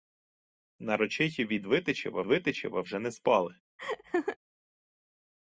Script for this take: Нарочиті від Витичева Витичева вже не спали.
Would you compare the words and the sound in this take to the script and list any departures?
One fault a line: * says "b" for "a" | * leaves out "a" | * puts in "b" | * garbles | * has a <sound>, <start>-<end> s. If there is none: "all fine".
* has a laugh, 3.8-4.4 s